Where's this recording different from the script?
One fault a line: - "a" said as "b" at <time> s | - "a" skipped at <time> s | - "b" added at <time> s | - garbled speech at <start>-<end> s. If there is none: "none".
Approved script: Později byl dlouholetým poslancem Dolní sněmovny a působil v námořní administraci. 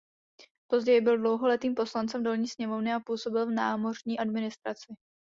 none